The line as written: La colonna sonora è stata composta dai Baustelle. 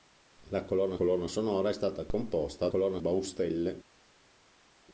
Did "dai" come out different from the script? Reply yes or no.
yes